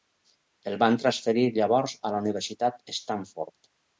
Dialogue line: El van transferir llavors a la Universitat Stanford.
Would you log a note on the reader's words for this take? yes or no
no